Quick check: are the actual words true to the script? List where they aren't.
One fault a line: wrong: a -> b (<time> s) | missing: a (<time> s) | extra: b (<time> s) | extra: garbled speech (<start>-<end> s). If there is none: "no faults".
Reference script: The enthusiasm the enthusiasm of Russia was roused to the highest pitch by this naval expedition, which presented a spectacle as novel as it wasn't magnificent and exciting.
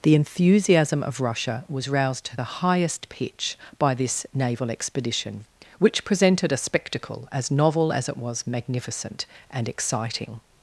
missing: the enthusiasm (1.0 s)
wrong: wasn't -> was (8.2 s)